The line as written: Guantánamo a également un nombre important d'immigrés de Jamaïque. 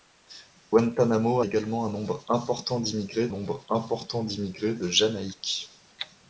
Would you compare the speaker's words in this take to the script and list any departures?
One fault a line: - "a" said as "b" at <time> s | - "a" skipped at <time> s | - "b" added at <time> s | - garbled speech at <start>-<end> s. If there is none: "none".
- "a" skipped at 1.4 s
- "nombre important d'immigrés" added at 3.3 s